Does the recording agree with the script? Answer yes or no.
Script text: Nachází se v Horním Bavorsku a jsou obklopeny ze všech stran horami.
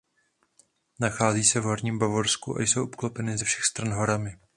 yes